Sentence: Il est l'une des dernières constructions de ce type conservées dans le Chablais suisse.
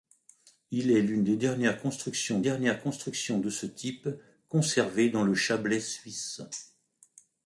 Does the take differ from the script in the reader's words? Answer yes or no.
yes